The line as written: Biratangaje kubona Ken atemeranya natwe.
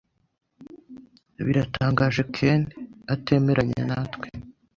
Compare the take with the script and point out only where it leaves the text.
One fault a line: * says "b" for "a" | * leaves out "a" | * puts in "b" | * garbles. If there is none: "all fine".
* leaves out "kubona"